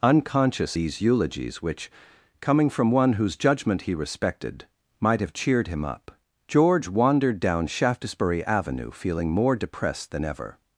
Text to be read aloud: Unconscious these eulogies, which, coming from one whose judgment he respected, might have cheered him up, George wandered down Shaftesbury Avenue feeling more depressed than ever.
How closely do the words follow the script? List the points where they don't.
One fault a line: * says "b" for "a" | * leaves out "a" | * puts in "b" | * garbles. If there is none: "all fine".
all fine